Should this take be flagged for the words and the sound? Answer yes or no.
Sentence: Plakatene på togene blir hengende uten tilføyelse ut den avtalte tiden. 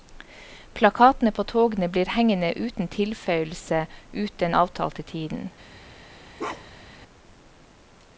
yes